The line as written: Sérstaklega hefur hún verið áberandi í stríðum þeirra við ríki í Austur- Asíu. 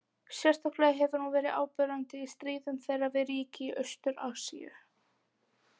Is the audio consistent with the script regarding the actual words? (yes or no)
yes